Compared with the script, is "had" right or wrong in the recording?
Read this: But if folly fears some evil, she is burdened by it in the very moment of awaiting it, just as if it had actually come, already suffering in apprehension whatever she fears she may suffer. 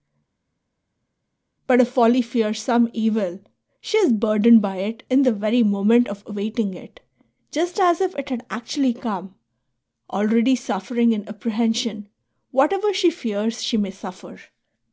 right